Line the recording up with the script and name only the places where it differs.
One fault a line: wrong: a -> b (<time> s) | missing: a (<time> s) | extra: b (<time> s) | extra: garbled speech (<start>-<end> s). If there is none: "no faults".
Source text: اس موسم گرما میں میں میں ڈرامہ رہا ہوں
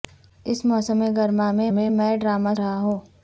no faults